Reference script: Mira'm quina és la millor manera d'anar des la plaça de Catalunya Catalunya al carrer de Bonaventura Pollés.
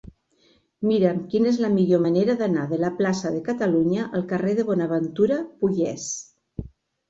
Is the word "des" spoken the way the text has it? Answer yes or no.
no